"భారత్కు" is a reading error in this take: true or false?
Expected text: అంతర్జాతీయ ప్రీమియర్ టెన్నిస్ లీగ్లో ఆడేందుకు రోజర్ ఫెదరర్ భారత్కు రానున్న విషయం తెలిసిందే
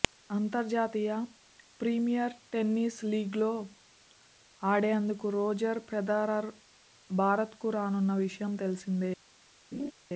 false